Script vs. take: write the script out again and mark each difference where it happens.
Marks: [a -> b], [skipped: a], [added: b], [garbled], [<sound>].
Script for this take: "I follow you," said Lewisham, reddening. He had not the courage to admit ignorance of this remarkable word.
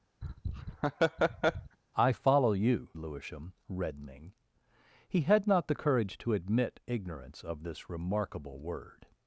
[laugh] "I follow you," [skipped: said] Lewisham, reddening. He had not the courage to admit ignorance of this remarkable word.